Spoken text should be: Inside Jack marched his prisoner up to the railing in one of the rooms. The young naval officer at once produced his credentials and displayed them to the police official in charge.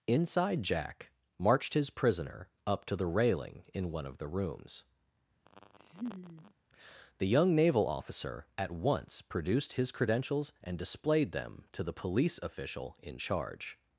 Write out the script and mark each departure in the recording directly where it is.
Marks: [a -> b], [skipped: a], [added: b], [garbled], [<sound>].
Inside Jack marched his prisoner up to the railing in one of the rooms. [laugh] The young naval officer at once produced his credentials and displayed them to the police official in charge.